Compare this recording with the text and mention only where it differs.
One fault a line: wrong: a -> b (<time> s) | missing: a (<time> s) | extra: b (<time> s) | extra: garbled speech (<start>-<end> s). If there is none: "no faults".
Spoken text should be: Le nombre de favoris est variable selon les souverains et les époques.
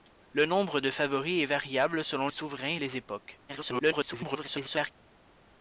missing: les (2.3 s)
extra: garbled speech (3.5-4.9 s)